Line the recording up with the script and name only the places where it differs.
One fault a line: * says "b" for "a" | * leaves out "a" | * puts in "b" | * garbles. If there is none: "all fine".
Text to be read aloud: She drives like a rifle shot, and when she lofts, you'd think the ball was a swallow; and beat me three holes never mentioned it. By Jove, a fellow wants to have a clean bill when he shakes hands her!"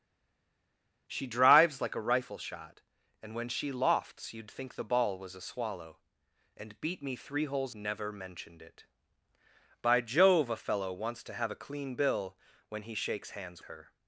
all fine